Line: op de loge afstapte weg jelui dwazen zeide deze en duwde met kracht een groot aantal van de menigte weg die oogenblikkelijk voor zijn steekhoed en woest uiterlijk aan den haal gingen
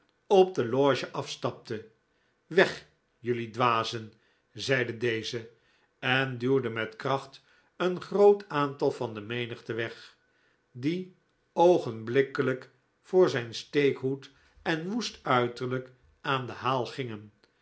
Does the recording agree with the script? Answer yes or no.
yes